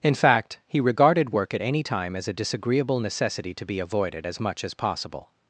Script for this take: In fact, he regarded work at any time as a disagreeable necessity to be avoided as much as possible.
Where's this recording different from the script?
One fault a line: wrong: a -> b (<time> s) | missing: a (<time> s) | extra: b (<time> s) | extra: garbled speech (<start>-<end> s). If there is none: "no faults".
no faults